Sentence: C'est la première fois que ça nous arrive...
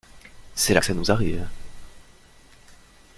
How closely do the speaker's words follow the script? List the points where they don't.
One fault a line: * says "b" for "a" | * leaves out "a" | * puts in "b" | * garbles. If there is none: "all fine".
* leaves out "première fois"